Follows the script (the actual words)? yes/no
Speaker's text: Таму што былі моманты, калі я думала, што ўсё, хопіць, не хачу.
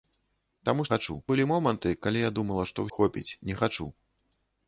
no